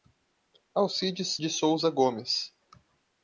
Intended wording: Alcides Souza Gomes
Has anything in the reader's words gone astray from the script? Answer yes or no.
yes